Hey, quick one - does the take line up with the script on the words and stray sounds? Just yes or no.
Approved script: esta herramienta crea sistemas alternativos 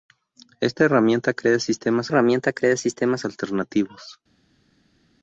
no